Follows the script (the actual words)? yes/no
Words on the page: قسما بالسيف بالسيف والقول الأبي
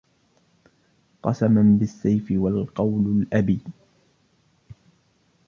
no